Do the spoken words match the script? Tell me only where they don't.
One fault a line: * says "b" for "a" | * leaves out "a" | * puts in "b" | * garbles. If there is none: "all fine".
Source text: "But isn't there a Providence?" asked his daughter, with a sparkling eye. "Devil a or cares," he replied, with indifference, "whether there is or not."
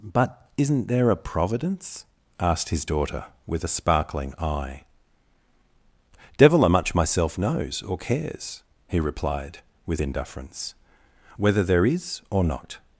* puts in "much myself knows"